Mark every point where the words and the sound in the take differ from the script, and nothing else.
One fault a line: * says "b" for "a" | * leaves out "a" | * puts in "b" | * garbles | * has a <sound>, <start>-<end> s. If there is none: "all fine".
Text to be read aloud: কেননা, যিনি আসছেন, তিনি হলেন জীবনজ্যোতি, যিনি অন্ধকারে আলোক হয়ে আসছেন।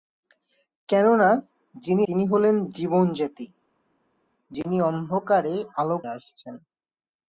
* leaves out "আসছেন"
* leaves out "হয়ে"